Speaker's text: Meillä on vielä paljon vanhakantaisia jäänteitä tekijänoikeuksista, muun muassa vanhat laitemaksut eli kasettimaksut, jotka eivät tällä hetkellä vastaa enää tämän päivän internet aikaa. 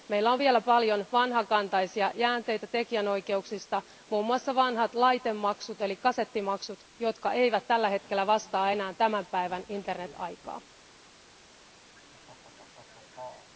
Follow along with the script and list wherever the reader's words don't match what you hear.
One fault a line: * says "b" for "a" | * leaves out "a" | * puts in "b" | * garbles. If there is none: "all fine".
all fine